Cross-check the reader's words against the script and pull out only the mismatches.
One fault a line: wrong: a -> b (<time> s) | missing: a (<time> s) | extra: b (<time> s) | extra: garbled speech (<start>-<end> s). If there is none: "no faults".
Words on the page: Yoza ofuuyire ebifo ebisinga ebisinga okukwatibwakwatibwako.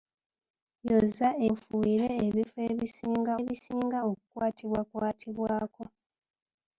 no faults